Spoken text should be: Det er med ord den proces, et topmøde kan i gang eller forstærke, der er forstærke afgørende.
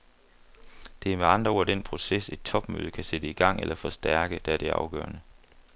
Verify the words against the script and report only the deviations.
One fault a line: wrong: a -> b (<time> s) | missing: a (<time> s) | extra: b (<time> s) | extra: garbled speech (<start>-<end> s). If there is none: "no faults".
extra: andre (1.2 s)
extra: sætte (3.0 s)
wrong: forstærke -> det (4.6 s)